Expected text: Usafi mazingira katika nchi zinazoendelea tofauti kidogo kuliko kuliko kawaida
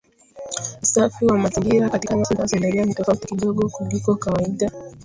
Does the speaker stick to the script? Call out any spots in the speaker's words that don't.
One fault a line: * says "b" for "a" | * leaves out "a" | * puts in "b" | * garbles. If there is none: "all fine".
* puts in "wa"
* puts in "ni"
* leaves out "kuliko"